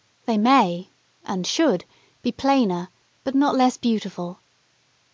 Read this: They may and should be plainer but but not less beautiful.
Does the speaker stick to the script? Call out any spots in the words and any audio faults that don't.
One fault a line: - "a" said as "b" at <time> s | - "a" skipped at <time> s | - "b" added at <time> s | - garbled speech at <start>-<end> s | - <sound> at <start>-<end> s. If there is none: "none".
- "but" skipped at 3.3 s